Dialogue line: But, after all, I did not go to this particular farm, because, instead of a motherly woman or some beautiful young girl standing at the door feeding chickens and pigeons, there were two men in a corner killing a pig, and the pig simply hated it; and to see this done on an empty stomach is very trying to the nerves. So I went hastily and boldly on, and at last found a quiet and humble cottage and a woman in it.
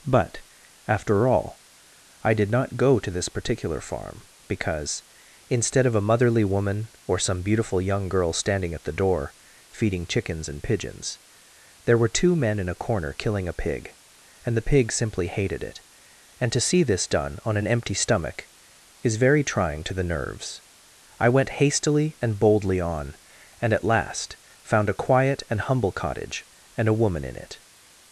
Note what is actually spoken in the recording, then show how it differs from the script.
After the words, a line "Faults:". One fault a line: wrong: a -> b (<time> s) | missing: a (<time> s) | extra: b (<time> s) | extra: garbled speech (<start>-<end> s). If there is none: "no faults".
But, after all, I did not go to this particular farm, because, instead of a motherly woman or some beautiful young girl standing at the door feeding chickens and pigeons, there were two men in a corner killing a pig, and the pig simply hated it; and to see this done on an empty stomach is very trying to the nerves. I went hastily and boldly on, and at last found a quiet and humble cottage and a woman in it.
Faults:
missing: So (20.6 s)